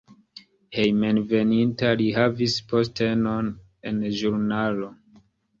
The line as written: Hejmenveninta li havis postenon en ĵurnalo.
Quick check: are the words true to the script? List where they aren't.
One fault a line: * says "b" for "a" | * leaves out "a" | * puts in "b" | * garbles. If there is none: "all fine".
all fine